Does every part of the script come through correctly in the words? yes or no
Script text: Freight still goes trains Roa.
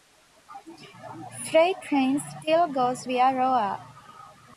no